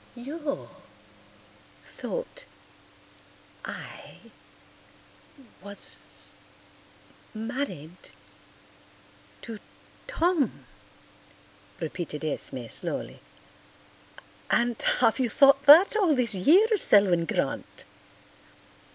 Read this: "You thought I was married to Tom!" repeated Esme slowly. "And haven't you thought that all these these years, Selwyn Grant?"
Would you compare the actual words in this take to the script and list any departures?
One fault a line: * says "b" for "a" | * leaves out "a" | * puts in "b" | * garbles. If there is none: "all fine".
* says "have" for "haven't"
* leaves out "these"